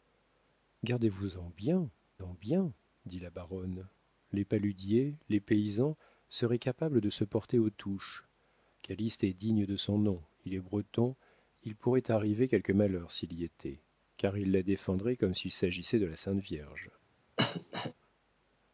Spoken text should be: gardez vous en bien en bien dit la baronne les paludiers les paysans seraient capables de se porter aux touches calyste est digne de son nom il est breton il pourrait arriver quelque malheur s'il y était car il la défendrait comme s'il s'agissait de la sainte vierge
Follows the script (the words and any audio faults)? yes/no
no